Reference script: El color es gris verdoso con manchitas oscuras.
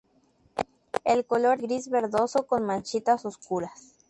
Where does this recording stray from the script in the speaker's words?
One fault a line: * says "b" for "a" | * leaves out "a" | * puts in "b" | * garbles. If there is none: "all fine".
* leaves out "es"